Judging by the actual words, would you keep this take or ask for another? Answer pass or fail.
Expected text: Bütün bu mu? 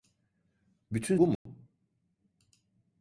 pass